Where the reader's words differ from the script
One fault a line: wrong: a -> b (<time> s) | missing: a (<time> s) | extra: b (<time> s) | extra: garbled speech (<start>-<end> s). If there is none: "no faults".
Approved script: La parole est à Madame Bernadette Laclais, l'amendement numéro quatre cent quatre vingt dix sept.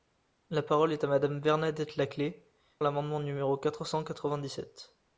no faults